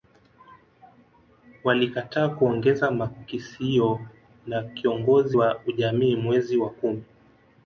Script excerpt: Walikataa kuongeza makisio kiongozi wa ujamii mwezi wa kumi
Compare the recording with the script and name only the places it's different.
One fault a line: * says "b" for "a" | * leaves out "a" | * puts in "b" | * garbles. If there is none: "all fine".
* puts in "na"